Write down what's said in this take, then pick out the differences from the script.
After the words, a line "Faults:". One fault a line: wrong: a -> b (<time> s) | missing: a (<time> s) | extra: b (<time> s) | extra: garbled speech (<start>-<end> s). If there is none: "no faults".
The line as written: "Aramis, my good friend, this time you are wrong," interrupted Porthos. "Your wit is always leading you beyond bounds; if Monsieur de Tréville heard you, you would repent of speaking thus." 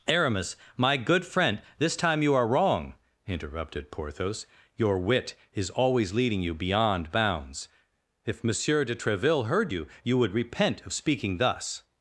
"Aramis, my good friend, this time you are wrong," interrupted Porthos. "Your wit is always leading you beyond bounds; if Monsieur de Tréville heard you, you would repent of speaking thus."
Faults:
no faults